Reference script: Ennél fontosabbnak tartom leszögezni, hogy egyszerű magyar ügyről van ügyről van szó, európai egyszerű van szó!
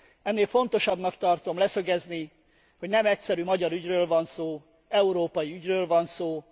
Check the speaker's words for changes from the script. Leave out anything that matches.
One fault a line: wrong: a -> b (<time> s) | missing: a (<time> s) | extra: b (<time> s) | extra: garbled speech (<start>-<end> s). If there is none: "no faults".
extra: nem (2.9 s)
missing: ügyről van (4.2 s)
wrong: egyszerű -> ügyről (5.5 s)